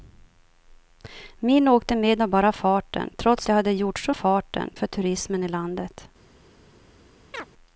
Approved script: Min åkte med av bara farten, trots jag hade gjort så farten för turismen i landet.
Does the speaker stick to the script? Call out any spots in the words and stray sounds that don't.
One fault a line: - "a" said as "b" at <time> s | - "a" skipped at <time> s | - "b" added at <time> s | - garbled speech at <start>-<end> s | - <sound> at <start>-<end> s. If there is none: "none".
- chirp at 7.3-7.5 s